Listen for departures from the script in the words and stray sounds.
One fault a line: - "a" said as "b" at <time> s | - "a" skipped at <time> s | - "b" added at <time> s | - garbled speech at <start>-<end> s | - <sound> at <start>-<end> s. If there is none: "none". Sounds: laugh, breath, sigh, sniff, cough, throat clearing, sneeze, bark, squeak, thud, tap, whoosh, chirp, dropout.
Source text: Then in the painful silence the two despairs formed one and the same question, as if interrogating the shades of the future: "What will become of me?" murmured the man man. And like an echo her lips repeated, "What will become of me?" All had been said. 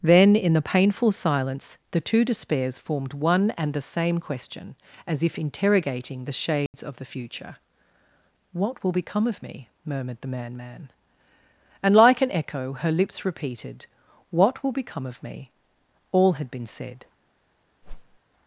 - dropout at 6.7-6.7 s
- whoosh at 17.8-18.2 s